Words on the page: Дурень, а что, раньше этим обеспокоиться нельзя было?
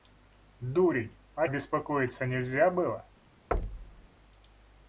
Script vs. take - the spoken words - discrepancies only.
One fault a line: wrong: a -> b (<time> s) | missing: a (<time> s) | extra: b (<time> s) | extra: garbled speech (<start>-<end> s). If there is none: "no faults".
missing: что раньше этим (1.5 s)